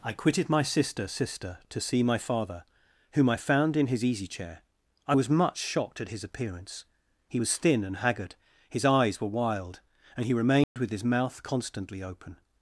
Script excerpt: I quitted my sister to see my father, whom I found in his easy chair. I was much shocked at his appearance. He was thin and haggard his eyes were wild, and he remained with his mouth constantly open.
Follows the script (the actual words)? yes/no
no